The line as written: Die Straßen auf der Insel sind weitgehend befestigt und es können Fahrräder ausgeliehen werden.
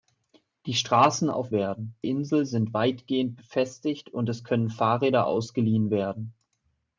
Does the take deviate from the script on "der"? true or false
true